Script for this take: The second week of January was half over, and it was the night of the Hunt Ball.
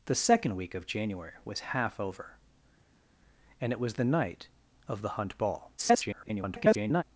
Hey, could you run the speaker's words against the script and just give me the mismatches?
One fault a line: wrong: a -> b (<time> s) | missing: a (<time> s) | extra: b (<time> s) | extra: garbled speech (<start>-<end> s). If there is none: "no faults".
extra: garbled speech (5.8-7.0 s)